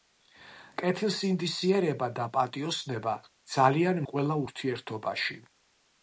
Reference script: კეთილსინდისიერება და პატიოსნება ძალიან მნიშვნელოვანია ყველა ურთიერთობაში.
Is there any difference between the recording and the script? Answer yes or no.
yes